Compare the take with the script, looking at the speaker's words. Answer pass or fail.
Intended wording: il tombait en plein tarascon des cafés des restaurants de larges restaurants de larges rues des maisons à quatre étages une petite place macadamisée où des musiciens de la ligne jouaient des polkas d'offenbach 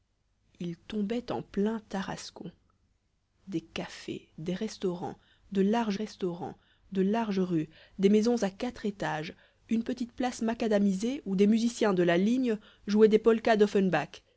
pass